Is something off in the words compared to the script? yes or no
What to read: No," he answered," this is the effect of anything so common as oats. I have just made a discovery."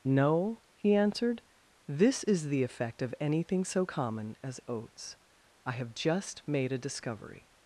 no